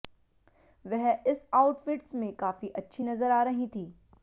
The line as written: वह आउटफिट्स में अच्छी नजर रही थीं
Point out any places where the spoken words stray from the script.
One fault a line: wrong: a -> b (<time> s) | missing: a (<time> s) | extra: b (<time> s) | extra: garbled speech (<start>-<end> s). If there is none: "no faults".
extra: इस (1.3 s)
extra: काफी (2.3 s)
extra: आ (3.3 s)